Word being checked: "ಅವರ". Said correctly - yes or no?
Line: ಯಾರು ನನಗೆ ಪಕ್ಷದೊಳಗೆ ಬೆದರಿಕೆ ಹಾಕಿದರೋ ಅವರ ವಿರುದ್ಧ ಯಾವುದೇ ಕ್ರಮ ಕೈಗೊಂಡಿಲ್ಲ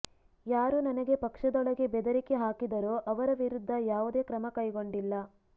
yes